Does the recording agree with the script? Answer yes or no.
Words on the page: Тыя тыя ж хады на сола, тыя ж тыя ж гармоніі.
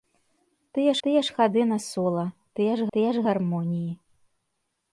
yes